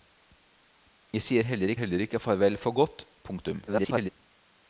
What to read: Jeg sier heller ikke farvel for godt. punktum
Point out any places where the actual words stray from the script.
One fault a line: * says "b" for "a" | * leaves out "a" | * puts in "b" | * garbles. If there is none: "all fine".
* puts in "heller"
* garbles